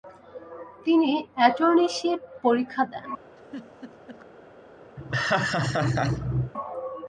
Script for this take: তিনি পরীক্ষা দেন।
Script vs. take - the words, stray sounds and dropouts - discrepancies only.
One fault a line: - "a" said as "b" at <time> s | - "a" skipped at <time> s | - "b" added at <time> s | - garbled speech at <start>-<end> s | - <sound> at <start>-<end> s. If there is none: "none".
- "অ্যাটর্নীশিপ" added at 1.4 s
- laugh at 3.4-4.3 s
- laugh at 5.0-6.5 s